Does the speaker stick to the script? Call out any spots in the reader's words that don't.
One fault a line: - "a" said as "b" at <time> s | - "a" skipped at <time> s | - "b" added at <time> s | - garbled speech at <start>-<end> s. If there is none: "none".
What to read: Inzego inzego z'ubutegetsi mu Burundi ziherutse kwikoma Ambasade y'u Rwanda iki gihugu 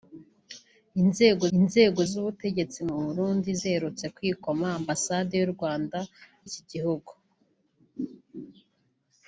none